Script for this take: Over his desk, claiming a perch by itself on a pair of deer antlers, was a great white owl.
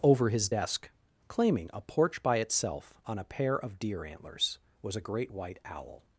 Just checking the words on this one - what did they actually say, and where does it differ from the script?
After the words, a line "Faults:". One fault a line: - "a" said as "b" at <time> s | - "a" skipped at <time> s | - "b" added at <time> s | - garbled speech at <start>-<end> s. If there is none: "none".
Over his desk, claiming a porch by itself on a pair of deer antlers, was a great white owl.
Faults:
- "perch" said as "porch" at 1.8 s